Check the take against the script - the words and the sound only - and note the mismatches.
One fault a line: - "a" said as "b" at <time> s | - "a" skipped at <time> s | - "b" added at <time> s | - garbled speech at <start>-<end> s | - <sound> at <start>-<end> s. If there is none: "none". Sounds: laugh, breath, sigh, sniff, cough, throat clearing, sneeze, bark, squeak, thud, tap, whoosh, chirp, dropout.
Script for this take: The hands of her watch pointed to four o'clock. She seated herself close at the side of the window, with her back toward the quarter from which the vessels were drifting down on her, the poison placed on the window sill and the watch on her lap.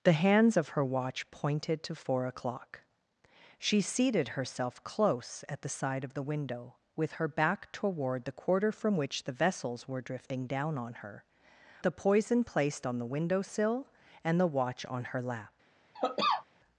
- cough at 15.9-16.5 s